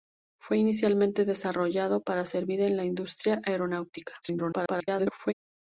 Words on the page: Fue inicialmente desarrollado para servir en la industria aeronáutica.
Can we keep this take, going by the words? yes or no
no